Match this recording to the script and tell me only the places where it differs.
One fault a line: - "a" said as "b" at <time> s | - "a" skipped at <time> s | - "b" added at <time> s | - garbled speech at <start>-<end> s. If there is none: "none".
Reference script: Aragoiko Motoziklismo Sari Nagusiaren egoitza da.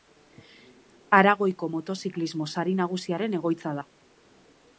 none